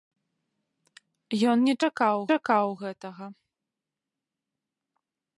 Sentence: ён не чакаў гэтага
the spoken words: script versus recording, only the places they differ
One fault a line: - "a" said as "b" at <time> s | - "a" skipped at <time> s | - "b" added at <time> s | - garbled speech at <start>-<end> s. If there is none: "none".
- "чакаў" added at 2.3 s